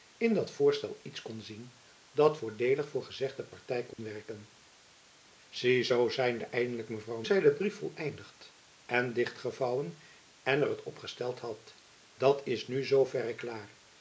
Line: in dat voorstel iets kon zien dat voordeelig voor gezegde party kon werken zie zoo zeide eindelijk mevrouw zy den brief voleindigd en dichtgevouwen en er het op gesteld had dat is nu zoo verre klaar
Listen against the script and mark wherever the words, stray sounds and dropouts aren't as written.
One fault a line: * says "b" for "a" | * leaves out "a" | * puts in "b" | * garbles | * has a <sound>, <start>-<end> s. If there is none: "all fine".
* has a dropout, 3.9-4.0 s